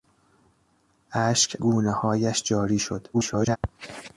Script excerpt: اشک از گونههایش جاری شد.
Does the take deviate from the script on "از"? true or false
true